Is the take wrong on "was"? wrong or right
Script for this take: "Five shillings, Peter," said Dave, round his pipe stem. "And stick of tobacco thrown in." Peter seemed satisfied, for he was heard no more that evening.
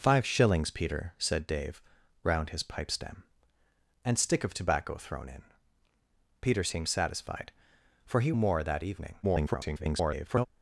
wrong